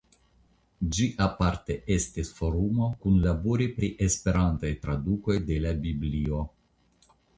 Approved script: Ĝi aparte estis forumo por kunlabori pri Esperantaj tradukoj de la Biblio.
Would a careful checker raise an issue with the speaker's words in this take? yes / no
yes